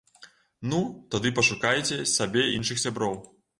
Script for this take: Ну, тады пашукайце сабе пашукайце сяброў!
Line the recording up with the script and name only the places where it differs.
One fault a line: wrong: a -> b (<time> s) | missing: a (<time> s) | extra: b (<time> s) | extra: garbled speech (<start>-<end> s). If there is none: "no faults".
wrong: пашукайце -> іншых (2.6 s)